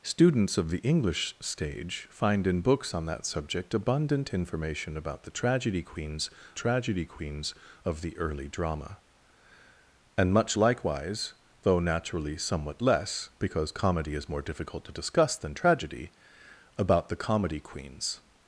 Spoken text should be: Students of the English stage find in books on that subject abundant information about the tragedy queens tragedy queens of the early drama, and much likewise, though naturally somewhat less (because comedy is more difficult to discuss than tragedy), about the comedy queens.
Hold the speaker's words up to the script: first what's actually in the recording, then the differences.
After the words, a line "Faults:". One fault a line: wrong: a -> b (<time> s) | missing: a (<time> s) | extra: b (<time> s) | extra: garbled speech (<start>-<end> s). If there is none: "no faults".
Students of the English stage find in books on that subject abundant information about the tragedy queens tragedy queens of the early drama, and much likewise, though naturally somewhat less (because comedy is more difficult to discuss than tragedy), about the comedy queens.
Faults:
no faults